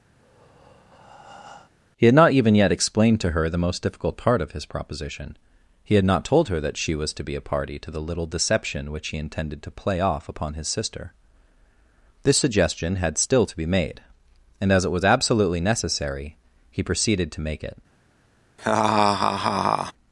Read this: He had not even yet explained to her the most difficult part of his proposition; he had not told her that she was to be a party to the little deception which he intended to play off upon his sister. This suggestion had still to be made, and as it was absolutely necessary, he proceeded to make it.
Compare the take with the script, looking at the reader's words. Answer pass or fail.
pass